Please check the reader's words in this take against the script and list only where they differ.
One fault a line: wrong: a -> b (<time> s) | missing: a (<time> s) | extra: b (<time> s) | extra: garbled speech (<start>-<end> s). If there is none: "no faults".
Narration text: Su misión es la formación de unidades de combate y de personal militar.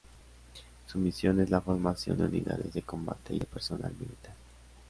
no faults